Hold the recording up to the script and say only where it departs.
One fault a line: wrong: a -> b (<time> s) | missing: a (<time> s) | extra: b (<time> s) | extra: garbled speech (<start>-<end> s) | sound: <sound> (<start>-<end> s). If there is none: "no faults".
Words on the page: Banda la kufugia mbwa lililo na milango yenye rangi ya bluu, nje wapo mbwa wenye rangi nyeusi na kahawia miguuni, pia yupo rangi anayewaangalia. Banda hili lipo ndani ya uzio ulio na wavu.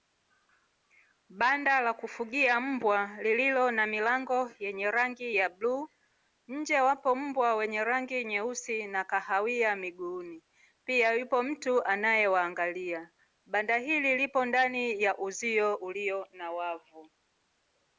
wrong: rangi -> mtu (11.4 s)